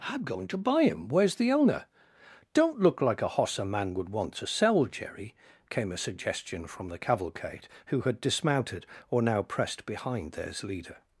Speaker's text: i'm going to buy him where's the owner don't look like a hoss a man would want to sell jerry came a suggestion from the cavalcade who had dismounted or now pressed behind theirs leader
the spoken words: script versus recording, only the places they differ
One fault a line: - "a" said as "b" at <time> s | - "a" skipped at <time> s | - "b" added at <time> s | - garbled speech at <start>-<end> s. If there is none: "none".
none